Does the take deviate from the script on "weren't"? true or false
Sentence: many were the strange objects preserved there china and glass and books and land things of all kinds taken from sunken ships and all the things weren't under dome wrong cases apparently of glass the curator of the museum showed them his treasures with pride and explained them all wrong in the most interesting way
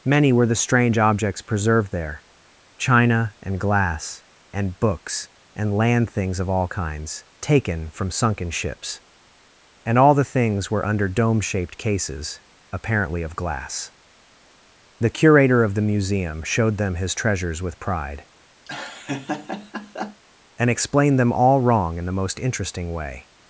true